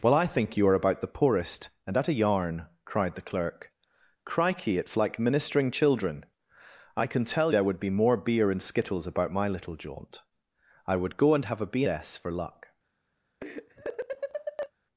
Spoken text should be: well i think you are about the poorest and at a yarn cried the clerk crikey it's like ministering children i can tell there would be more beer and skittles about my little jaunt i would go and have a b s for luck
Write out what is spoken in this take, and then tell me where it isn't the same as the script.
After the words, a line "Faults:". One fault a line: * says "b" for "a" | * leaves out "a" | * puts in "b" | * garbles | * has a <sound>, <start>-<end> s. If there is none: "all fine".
well i think you are about the poorest and at a yarn cried the clerk crikey it's like ministering children i can tell there would be more beer and skittles about my little jaunt i would go and have a b s for luck
Faults:
* has a laugh, 13.4-14.7 s